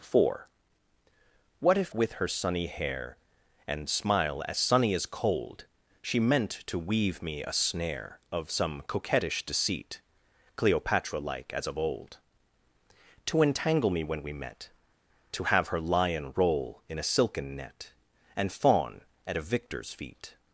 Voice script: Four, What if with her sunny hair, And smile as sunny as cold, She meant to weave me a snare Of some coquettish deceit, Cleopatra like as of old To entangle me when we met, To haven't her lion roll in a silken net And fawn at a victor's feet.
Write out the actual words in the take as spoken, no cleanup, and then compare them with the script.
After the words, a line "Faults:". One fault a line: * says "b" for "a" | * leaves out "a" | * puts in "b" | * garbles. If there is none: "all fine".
Four, What if with her sunny hair, And smile as sunny as cold, She meant to weave me a snare Of some coquettish deceit, Cleopatra like as of old To entangle me when we met, To have her lion roll in a silken net And fawn at a victor's feet.
Faults:
* says "have" for "haven't"